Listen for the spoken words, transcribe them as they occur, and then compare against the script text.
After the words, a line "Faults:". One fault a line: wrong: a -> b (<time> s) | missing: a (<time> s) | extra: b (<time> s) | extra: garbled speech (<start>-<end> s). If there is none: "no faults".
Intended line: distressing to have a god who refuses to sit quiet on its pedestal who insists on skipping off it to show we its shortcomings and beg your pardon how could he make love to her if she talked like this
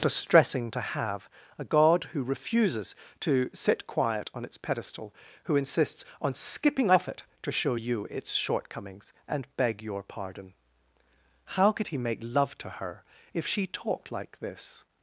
distressing to have a god who refuses to sit quiet on its pedestal who insists on skipping off it to show you its shortcomings and beg your pardon how could he make love to her if she talked like this
Faults:
wrong: we -> you (7.7 s)